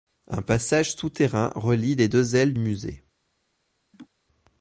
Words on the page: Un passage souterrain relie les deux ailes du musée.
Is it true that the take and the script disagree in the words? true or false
true